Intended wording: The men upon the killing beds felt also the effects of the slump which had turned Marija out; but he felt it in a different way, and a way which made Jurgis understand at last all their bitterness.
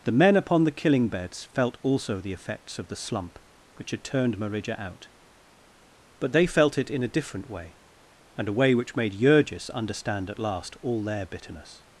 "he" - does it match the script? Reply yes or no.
no